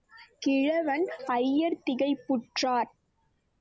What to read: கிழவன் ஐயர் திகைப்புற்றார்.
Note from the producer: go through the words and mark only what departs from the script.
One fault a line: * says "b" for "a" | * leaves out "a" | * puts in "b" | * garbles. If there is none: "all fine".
all fine